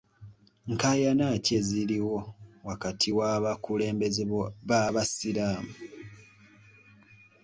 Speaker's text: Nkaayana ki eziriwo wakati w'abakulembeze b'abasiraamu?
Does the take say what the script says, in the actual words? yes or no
yes